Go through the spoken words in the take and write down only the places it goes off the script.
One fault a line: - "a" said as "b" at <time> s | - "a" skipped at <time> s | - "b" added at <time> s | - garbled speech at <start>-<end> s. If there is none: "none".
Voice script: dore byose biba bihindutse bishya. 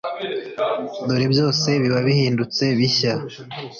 none